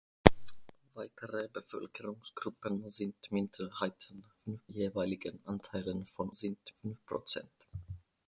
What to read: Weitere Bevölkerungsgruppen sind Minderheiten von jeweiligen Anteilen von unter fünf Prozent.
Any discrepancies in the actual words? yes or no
yes